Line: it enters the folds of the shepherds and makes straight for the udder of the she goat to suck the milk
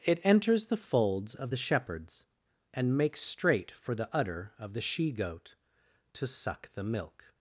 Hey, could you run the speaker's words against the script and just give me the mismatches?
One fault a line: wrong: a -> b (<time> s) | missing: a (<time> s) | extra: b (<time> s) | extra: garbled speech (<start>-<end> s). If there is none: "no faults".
no faults